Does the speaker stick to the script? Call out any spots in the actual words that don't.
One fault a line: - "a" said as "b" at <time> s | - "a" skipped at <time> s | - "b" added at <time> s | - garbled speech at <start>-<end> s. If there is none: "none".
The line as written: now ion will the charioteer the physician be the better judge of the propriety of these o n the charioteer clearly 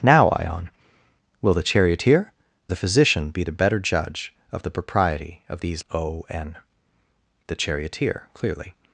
none